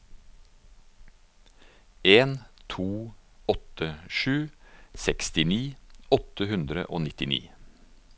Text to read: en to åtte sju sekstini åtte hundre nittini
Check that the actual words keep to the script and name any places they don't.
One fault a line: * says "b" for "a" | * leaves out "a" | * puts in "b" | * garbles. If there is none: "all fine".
* puts in "og"